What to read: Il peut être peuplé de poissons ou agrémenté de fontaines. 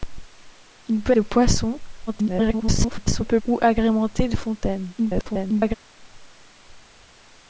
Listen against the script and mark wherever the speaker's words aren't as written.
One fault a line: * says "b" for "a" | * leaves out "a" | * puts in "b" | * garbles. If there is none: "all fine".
* leaves out "être peuplé"
* garbles
* garbles